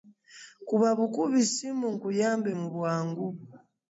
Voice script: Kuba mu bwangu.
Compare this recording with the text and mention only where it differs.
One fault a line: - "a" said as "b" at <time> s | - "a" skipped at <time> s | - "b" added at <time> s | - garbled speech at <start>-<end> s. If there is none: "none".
- "bukubi ssimu nkuyambe" added at 1.0 s